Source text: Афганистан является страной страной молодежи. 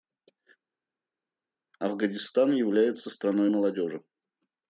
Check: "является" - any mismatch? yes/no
no